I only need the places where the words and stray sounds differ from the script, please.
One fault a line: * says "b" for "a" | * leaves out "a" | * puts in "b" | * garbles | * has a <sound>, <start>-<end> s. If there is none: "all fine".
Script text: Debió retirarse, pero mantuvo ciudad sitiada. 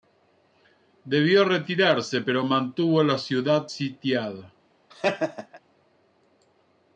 * puts in "la"
* has a laugh, 4.9-5.6 s